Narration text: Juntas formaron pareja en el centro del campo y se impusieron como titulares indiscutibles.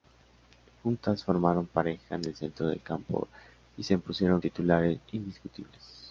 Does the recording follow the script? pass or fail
fail